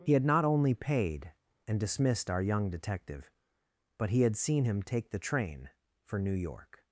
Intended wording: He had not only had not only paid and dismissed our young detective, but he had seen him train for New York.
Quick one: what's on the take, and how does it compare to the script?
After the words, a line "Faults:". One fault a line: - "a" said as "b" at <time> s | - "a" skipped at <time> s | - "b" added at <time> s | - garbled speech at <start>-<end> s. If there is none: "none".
He had not only paid and dismissed our young detective, but he had seen him take the train for New York.
Faults:
- "had not only" skipped at 0.7 s
- "take the" added at 4.8 s